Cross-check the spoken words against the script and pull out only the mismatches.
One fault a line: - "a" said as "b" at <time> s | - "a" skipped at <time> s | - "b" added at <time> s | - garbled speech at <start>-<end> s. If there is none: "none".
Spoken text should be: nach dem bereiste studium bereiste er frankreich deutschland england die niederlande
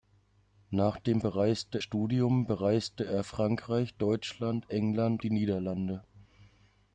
none